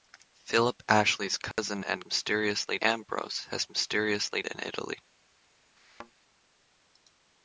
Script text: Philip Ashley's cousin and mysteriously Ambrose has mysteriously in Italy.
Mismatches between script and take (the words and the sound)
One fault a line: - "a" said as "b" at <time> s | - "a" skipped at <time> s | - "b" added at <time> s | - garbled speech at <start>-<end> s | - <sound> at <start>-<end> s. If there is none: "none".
- dropout at 1.5-1.6 s
- thud at 5.8-6.1 s